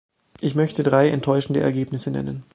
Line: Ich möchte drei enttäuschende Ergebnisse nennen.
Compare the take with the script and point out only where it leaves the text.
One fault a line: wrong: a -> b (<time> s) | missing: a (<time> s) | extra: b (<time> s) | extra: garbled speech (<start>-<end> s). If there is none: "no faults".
no faults